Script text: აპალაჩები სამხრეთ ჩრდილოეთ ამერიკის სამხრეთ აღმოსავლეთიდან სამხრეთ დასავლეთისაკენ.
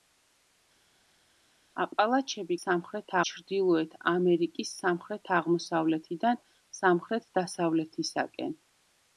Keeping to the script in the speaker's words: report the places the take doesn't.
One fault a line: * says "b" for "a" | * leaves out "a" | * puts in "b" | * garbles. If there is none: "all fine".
all fine